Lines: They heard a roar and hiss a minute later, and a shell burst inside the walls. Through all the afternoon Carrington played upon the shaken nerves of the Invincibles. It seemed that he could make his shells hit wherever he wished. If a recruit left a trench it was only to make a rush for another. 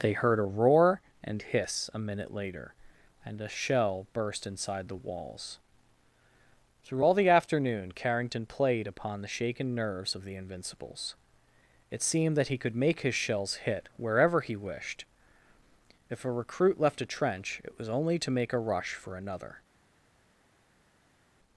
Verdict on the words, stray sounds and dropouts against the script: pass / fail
pass